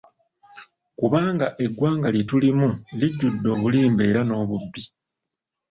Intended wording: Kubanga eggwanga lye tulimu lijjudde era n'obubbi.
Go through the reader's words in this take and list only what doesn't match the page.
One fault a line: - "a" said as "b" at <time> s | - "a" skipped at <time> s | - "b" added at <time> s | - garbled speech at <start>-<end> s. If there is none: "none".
- "obulimba" added at 3.5 s